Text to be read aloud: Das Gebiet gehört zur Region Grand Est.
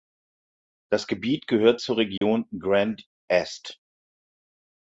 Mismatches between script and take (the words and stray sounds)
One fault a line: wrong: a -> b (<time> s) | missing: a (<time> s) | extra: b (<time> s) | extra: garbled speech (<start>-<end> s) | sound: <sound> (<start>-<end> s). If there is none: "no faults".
sound: dropout (2.2-2.2 s)